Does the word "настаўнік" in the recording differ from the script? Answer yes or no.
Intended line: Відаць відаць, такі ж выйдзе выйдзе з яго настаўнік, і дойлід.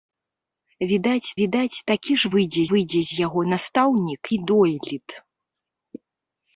no